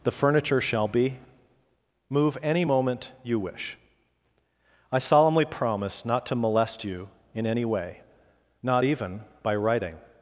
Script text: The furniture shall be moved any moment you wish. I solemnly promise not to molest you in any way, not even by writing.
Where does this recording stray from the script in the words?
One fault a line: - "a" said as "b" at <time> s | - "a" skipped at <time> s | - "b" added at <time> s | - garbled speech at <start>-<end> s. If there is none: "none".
- "moved" said as "move" at 2.1 s